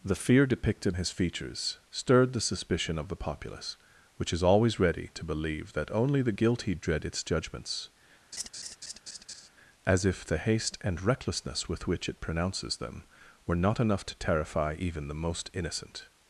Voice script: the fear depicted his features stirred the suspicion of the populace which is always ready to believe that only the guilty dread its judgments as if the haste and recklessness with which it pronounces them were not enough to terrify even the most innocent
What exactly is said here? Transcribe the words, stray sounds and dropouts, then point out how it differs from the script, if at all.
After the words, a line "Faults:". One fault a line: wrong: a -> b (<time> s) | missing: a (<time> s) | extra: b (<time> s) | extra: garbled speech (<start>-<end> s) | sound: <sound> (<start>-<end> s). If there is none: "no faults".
the fear depicted his features stirred the suspicion of the populace which is always ready to believe that only the guilty dread its judgments as if the haste and recklessness with which it pronounces them were not enough to terrify even the most innocent
Faults:
sound: laugh (8.3-9.5 s)